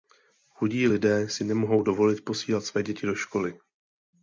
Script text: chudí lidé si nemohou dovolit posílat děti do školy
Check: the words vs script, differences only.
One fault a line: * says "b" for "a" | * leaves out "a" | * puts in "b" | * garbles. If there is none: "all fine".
* puts in "své"